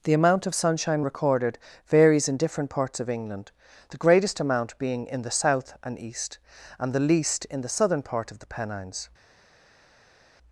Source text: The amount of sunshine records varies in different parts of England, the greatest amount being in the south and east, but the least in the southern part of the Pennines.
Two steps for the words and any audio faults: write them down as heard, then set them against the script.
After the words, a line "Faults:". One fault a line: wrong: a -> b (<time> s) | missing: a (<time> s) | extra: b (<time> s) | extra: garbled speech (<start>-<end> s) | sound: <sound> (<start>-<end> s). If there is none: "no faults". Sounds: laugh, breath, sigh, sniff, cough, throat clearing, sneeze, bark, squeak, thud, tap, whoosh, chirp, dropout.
The amount of sunshine recorded varies in different parts of England, the greatest amount being in the south and east, and the least in the southern part of the Pennines.
Faults:
wrong: records -> recorded (1.0 s)
wrong: but -> and (6.8 s)